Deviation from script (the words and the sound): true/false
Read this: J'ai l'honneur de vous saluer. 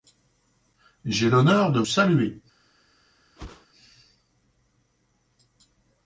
true